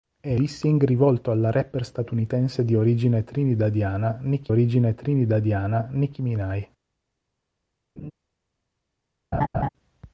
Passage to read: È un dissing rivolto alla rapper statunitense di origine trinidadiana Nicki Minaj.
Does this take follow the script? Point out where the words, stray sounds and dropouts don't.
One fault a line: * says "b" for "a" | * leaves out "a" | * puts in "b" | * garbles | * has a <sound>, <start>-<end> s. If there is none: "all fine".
* leaves out "un"
* puts in "origine trinidadiana Nicki"
* has a laugh, 8.0-8.1 s
* has a laugh, 9.3-9.7 s